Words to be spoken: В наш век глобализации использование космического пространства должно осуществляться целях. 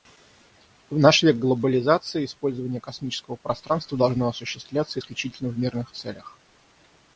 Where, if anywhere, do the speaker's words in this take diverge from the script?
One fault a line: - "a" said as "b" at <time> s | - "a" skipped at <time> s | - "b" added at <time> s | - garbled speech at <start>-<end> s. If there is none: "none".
- "исключительно в мирных" added at 5.0 s